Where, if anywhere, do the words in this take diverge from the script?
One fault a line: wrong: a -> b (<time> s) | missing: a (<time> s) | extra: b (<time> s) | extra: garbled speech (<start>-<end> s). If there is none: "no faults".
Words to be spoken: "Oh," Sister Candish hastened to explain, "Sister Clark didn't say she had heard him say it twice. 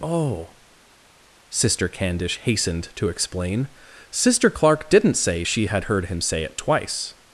no faults